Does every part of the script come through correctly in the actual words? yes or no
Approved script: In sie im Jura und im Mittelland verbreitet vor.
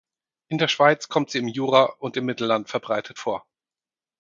no